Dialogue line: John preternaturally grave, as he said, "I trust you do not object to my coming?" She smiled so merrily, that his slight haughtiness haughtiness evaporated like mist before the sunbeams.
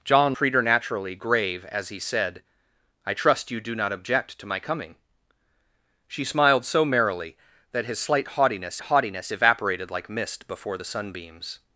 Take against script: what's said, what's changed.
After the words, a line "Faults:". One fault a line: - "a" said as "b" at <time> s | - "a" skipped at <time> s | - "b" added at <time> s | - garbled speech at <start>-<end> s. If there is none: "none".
John preternaturally grave, as he said, "I trust you do not object to my coming?" She smiled so merrily, that his slight haughtiness haughtiness evaporated like mist before the sunbeams.
Faults:
none